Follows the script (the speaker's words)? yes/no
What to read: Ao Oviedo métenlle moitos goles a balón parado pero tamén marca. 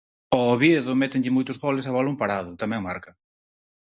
no